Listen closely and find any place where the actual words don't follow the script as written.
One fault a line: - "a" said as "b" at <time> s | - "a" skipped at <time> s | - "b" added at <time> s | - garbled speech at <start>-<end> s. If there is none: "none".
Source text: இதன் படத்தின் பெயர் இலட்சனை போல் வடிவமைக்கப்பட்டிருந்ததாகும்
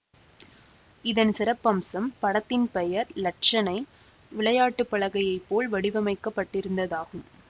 - "சிறப்பம்சம்" added at 1.3 s
- "விளையாட்டு பலகையைப்" added at 4.3 s